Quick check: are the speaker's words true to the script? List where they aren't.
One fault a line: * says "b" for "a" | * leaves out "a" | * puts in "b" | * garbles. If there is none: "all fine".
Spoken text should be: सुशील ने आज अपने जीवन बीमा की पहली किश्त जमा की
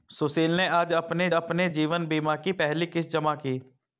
* puts in "अपने"